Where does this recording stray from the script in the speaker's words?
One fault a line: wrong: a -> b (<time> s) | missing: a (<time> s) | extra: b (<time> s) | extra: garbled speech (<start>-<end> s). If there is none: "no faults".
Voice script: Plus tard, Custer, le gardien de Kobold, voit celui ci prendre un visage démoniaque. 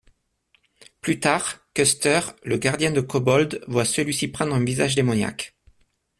no faults